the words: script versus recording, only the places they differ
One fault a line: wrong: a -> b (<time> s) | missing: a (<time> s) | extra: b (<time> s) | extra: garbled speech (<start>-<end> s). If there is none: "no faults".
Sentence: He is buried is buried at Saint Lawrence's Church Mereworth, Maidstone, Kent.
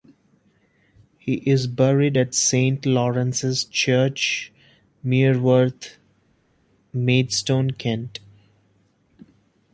missing: is buried (2.2 s)